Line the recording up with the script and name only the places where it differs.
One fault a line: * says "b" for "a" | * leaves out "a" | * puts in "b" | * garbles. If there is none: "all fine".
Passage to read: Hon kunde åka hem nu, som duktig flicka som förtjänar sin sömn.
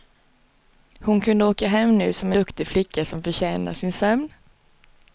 all fine